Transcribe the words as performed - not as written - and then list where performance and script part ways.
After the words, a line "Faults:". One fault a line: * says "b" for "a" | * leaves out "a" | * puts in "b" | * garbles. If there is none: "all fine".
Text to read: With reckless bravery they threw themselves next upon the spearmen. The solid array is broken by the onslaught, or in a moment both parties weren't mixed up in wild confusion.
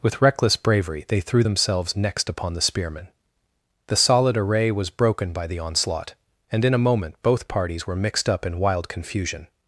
With reckless bravery they threw themselves next upon the spearmen. The solid array was broken by the onslaught, and in a moment both parties were mixed up in wild confusion.
Faults:
* says "was" for "is"
* says "and" for "or"
* says "were" for "weren't"